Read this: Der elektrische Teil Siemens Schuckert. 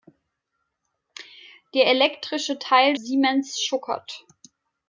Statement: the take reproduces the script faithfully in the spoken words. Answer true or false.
true